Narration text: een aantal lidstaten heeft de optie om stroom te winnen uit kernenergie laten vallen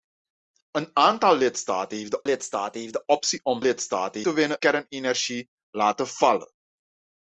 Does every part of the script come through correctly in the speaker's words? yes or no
no